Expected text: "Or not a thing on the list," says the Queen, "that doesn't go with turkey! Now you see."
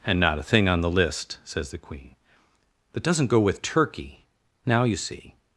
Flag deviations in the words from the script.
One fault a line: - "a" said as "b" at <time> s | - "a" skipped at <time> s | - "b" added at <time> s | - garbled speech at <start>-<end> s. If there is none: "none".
- "Or" said as "And" at 0.1 s